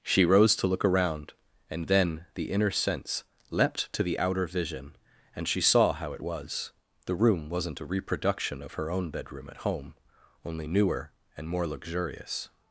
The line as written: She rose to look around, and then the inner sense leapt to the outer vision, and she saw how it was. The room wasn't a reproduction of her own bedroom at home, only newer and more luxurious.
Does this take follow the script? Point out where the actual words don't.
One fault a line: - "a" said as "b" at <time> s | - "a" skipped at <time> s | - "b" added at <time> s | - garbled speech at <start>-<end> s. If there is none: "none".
none